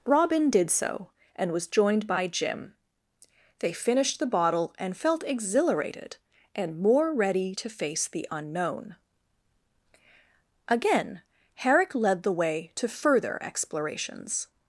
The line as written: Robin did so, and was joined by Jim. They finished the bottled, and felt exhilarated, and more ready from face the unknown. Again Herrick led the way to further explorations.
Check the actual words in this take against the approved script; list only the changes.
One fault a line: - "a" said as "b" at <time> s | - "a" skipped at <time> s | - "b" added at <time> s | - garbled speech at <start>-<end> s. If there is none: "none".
- "bottled" said as "bottle" at 4.2 s
- "from" said as "to" at 7.5 s